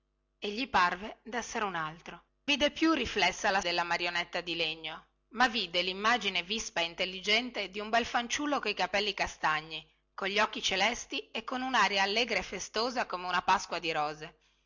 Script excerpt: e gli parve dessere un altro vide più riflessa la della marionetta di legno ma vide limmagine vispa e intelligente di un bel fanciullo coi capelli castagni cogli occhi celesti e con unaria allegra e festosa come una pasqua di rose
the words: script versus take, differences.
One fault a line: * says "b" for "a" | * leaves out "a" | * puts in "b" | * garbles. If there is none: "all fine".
all fine